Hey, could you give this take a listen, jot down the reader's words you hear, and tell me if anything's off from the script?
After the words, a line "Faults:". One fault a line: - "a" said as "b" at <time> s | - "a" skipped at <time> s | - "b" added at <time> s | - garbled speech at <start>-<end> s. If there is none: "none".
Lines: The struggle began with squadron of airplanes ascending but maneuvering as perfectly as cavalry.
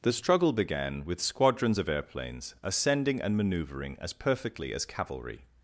The struggle began with squadrons of airplanes ascending and maneuvering as perfectly as cavalry.
Faults:
- "squadron" said as "squadrons" at 1.2 s
- "but" said as "and" at 3.2 s